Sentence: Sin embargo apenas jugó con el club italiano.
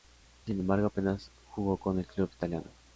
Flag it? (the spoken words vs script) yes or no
no